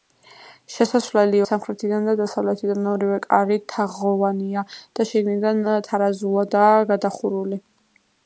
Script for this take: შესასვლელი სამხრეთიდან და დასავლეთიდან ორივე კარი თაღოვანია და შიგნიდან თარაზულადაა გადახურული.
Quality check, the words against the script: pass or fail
pass